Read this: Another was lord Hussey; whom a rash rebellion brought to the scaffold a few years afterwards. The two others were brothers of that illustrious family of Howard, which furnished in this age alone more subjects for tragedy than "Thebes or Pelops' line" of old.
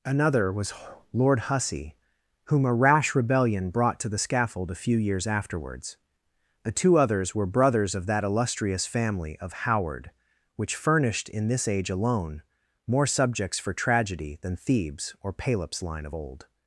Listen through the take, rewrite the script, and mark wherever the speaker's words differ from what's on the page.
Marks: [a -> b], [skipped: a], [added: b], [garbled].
Another was lord Hussey; whom a rash rebellion brought to the scaffold a few years afterwards. The two others were brothers of that illustrious family of Howard, which furnished in this age alone more subjects for tragedy than "Thebes or Pelops' line" of old.